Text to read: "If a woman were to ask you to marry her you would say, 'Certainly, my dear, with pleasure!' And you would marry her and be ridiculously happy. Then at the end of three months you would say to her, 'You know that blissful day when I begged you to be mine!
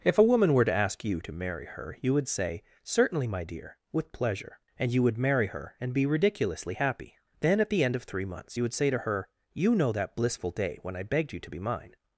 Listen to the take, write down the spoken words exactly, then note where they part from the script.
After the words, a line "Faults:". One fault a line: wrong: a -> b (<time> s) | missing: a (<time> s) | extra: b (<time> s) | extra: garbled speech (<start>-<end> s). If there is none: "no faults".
"If a woman were to ask you to marry her you would say, 'Certainly, my dear, with pleasure!' And you would marry her and be ridiculously happy. Then at the end of three months you would say to her, 'You know that blissful day when I begged you to be mine!
Faults:
no faults